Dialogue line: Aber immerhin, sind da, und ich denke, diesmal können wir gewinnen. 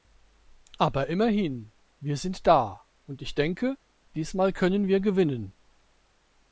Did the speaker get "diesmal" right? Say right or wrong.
right